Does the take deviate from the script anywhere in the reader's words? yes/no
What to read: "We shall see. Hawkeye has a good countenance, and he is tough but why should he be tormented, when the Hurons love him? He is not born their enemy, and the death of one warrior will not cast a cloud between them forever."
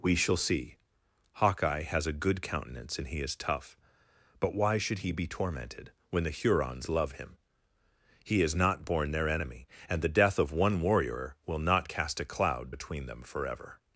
no